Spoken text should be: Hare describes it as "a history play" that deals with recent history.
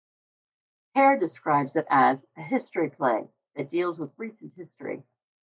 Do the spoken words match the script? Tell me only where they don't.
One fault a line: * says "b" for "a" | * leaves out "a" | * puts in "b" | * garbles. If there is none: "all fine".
all fine